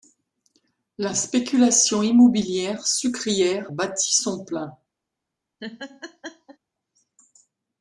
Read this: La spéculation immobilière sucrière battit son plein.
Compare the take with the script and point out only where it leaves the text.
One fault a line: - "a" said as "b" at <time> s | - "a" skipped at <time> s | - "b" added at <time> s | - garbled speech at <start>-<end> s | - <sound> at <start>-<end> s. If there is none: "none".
- laugh at 5.6-6.6 s